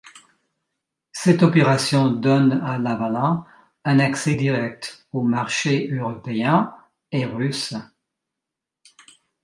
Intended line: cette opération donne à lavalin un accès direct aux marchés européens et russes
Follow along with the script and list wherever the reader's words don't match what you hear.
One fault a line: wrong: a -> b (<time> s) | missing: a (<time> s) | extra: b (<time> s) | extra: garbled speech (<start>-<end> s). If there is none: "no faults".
no faults